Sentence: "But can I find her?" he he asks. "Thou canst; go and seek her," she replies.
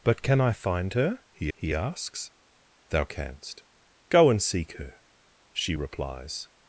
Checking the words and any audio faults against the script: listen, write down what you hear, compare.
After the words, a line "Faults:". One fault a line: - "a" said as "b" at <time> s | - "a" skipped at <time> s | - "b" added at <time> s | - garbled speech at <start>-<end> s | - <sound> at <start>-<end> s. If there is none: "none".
"But can I find her?" he he asks. "Thou canst; go and seek her," she replies.
Faults:
none